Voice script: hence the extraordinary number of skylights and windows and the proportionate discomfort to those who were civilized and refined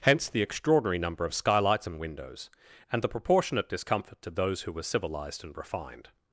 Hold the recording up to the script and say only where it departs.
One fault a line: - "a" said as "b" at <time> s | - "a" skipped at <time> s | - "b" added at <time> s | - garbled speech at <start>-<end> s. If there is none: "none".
none